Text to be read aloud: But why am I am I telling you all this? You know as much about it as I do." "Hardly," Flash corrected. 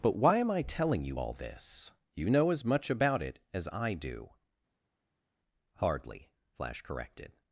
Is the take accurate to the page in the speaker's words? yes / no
no